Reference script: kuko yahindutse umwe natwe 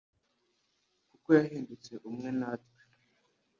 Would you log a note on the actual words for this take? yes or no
no